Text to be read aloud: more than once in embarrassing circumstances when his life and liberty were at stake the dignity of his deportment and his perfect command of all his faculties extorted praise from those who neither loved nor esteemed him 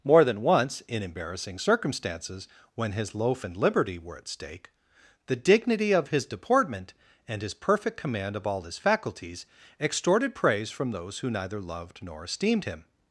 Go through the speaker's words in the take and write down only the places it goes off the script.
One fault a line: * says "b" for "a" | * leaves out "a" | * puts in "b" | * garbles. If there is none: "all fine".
* says "loaf" for "life"